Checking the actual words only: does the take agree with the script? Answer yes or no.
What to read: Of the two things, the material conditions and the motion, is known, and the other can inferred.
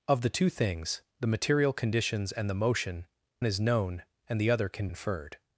yes